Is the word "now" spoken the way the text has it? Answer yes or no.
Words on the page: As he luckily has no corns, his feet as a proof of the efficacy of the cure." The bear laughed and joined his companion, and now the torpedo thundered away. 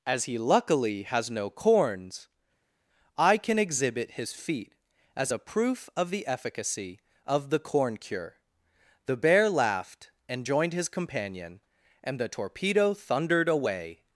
no